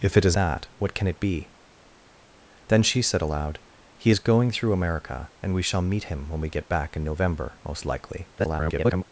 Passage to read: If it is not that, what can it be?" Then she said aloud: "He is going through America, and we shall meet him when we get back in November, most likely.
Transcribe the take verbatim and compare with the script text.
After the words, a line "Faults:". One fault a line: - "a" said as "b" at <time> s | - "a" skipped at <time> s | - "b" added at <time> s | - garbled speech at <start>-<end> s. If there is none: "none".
If it is that, what can it be?" Then she said aloud: "He is going through America, and we shall meet him when we get back in November, most likely. [garbled]
Faults:
- "not" skipped at 0.3 s
- garbled speech at 8.4-9.0 s